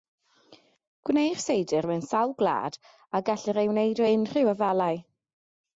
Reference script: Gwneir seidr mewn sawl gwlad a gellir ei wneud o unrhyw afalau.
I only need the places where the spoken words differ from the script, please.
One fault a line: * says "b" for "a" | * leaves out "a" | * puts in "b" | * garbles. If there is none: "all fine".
all fine